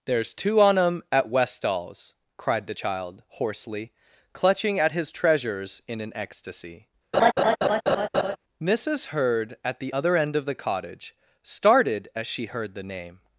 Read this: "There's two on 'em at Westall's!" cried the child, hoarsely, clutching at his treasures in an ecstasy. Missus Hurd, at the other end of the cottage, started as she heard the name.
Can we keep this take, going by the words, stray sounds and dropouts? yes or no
no